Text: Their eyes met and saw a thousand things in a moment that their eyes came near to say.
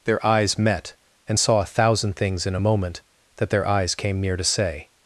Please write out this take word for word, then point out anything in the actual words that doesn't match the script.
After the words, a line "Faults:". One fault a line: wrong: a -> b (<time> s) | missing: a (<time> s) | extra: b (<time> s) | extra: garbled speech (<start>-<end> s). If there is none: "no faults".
Their eyes met and saw a thousand things in a moment that their eyes came near to say.
Faults:
no faults